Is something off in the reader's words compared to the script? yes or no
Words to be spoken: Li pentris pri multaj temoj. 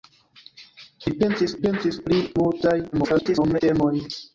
yes